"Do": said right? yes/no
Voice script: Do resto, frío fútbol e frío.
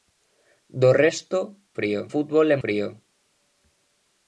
yes